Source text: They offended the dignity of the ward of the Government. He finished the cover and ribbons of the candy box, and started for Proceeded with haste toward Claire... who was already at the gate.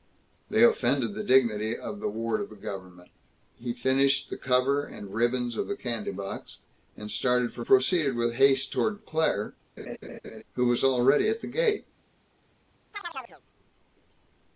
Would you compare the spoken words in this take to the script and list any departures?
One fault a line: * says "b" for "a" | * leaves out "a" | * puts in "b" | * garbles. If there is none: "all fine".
all fine